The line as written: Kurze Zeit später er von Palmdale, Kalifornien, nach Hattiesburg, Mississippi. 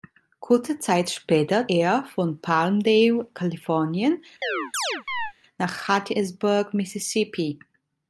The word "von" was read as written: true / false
true